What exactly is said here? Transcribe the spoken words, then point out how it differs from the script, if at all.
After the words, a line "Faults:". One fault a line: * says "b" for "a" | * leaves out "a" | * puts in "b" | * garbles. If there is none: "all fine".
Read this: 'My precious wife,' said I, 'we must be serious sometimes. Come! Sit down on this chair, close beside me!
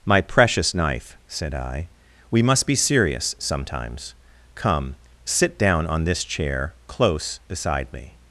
'My precious knife,' said I, 'we must be serious sometimes. Come! Sit down on this chair, close beside me!
Faults:
* says "knife" for "wife"